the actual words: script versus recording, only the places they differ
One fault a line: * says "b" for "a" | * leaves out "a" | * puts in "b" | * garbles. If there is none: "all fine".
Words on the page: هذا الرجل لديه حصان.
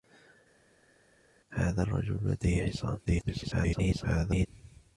* garbles